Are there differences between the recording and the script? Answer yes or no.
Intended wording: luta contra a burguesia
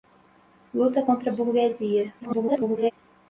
yes